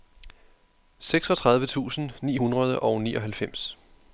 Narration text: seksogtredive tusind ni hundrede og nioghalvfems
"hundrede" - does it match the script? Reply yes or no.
yes